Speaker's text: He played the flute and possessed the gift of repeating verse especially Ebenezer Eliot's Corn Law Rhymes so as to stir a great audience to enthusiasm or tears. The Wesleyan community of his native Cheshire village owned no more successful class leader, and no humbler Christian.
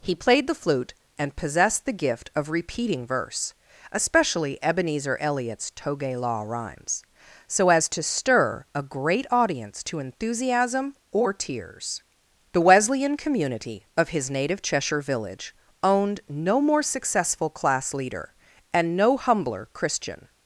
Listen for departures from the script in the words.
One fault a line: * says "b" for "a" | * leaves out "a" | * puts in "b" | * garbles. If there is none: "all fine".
* says "Toge" for "Corn"